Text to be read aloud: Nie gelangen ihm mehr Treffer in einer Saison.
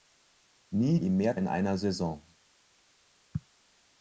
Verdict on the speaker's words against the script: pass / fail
fail